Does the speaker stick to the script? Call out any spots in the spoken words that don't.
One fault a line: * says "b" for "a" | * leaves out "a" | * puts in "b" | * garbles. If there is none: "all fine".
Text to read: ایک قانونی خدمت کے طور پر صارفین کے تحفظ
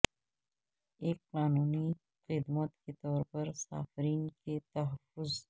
all fine